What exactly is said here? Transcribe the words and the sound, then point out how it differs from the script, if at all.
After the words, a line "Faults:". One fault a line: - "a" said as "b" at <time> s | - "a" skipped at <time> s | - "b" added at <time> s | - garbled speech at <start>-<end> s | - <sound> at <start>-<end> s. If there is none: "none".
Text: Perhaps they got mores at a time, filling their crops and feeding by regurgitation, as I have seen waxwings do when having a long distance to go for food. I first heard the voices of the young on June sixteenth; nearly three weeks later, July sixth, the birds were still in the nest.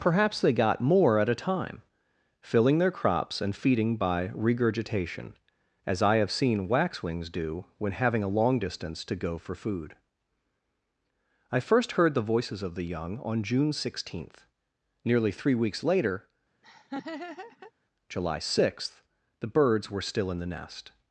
Perhaps they got more at a time, filling their crops and feeding by regurgitation, as I have seen waxwings do when having a long distance to go for food. I first heard the voices of the young on June sixteenth; nearly three weeks later, July sixth, the birds were still in the nest.
Faults:
- "mores" said as "more" at 0.8 s
- laugh at 16.6-17.7 s